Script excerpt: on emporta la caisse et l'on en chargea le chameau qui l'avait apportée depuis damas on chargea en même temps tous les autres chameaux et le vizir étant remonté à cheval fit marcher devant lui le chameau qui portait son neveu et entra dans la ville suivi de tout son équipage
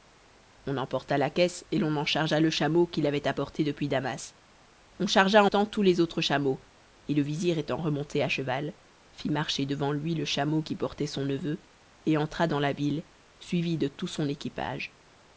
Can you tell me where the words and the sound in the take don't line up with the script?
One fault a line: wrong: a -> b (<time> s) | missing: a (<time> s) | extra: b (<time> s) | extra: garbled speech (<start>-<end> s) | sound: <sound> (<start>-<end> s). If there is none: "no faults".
missing: même (5.5 s)